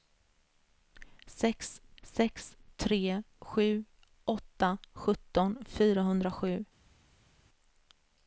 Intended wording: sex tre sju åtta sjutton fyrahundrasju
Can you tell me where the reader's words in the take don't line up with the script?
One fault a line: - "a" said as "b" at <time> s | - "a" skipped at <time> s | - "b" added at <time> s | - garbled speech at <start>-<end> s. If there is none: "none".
- "sex" added at 2.0 s